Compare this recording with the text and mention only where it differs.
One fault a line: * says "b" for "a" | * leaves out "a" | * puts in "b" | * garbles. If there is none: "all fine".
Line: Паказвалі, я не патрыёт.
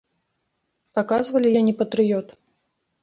all fine